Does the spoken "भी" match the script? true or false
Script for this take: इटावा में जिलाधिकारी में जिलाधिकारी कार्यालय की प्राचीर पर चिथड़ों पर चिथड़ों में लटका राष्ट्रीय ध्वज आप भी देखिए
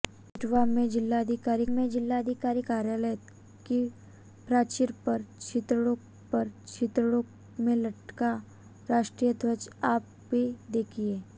true